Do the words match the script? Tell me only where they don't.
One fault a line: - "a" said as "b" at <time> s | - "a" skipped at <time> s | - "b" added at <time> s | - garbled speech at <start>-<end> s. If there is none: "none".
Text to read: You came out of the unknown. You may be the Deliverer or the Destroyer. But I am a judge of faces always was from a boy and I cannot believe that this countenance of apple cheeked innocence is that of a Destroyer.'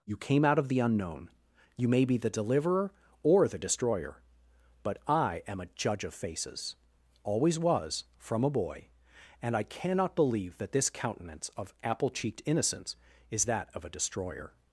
none